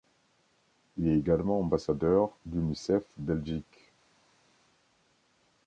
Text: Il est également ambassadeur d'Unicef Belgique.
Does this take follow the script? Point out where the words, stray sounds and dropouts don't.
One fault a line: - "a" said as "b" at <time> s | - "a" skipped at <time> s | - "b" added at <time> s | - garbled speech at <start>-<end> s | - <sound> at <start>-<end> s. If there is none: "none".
none